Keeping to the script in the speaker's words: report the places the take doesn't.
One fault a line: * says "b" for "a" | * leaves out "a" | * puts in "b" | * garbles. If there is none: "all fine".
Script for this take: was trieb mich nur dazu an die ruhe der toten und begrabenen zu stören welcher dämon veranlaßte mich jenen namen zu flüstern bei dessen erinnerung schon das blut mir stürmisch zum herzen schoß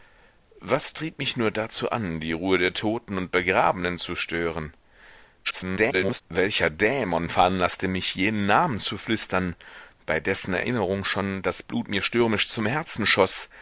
* garbles